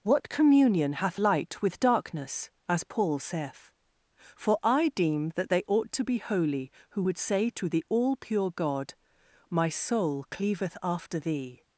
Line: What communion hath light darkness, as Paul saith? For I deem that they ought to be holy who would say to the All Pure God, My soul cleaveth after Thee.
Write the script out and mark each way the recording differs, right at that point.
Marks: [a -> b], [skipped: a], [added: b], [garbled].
What communion hath light [added: with] darkness, as Paul saith? For I deem that they ought to be holy who would say to the All Pure God, My soul cleaveth after Thee.